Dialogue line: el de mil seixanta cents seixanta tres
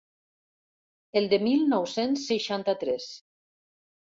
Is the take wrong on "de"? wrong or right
right